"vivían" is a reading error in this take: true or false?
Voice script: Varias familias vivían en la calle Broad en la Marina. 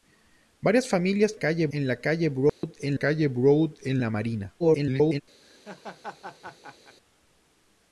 true